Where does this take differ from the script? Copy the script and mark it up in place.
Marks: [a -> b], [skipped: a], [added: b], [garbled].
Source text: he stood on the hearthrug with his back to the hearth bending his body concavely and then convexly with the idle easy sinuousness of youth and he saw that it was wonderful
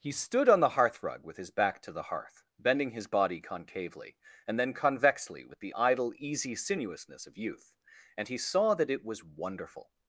he stood on the hearthrug with his back to the hearth bending his body concavely and then convexly with the idle easy sinuousness of youth and he saw that it was wonderful